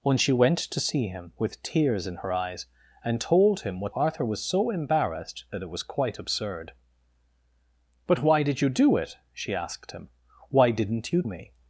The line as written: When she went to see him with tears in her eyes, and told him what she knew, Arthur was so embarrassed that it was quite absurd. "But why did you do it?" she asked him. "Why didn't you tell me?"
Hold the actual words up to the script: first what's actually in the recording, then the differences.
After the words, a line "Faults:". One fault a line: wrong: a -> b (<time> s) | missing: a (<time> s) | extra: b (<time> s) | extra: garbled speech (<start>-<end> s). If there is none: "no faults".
When she went to see him with tears in her eyes, and told him what Arthur was so embarrassed that it was quite absurd. "But why did you do it?" she asked him. "Why didn't you me?"
Faults:
missing: she knew (4.0 s)
missing: tell (11.2 s)